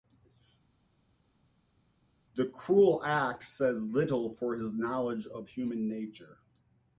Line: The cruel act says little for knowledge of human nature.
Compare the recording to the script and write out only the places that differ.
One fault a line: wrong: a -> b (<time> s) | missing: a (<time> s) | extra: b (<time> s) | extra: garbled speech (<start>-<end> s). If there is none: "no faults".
extra: his (4.6 s)